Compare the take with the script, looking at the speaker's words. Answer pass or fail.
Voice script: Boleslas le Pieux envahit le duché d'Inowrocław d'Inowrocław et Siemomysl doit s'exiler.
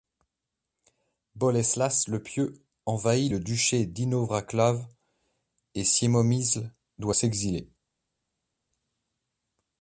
fail